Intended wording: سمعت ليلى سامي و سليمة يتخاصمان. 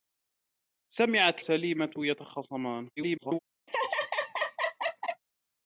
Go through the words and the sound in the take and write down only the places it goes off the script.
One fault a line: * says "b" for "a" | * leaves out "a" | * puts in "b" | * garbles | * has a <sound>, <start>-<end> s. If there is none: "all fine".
* leaves out "ليلى سامي و"
* garbles
* has a laugh, 3.7-5.2 s